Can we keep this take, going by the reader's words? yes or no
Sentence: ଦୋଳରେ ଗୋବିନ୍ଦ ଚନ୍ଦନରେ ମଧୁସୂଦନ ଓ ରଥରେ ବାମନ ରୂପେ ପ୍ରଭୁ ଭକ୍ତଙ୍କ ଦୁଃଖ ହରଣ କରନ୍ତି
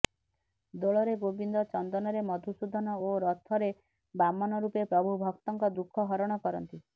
yes